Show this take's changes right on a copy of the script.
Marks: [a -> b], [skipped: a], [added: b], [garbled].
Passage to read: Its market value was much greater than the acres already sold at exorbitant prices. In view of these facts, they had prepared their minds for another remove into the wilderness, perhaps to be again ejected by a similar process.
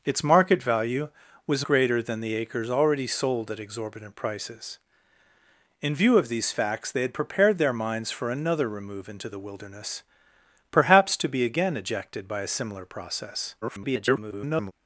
Its market value was [skipped: much] greater than the acres already sold at exorbitant prices. In view of these facts, they had prepared their minds for another remove into the wilderness, perhaps to be again ejected by a similar process. [garbled]